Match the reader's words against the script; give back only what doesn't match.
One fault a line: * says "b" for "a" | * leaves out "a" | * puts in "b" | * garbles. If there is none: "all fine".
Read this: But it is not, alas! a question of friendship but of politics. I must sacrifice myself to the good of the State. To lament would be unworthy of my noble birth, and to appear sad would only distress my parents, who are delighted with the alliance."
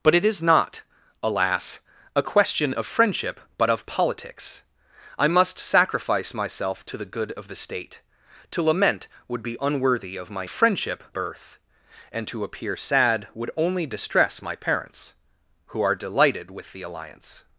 * says "friendship" for "noble"